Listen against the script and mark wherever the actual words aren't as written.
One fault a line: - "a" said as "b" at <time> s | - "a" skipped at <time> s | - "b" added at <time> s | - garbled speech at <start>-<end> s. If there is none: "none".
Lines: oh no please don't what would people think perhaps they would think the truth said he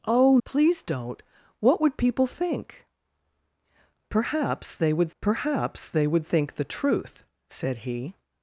- "no" skipped at 0.4 s
- "perhaps they would" added at 5.2 s